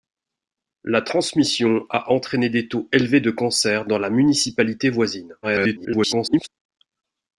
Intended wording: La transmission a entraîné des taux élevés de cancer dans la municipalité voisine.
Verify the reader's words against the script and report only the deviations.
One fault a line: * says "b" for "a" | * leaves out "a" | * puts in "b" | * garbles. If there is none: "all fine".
* garbles